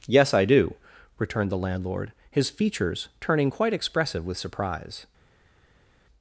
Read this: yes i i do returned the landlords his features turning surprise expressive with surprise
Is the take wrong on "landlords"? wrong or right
wrong